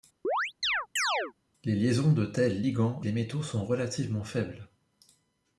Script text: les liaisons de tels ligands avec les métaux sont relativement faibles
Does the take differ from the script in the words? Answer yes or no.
yes